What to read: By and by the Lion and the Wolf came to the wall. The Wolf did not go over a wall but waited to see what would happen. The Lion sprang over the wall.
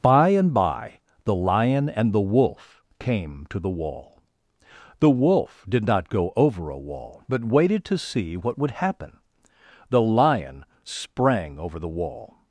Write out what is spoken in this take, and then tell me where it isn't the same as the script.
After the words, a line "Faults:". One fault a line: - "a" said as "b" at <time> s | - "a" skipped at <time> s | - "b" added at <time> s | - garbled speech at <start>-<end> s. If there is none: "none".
By and by the Lion and the Wolf came to the wall. The Wolf did not go over a wall but waited to see what would happen. The Lion sprang over the wall.
Faults:
none